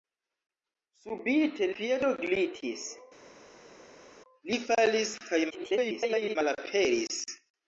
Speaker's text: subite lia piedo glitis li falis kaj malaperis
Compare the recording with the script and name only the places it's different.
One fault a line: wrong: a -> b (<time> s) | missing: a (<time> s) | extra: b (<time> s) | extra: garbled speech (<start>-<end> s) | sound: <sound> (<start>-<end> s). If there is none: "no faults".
missing: lia (1.7 s)
extra: garbled speech (5.5-6.4 s)